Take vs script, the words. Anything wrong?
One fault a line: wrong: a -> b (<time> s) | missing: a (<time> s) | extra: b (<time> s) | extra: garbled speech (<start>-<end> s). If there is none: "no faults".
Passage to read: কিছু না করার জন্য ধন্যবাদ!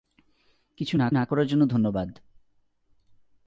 extra: না (1.1 s)